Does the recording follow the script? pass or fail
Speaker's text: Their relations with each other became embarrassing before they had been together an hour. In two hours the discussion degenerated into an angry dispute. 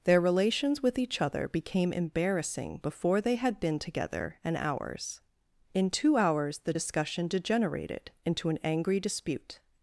fail